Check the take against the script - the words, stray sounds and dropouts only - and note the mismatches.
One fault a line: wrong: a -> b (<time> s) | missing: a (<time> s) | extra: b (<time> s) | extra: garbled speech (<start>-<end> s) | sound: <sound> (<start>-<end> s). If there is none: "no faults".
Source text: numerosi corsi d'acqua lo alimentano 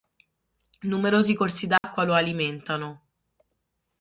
sound: dropout (1.8-1.8 s)